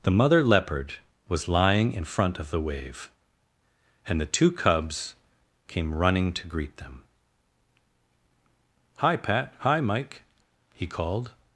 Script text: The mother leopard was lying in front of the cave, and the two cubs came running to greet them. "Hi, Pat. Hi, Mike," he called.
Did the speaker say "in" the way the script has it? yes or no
yes